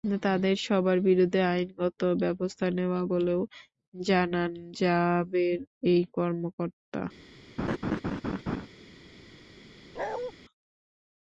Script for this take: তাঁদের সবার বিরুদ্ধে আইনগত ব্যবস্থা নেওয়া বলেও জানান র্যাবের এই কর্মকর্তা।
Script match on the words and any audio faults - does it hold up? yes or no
no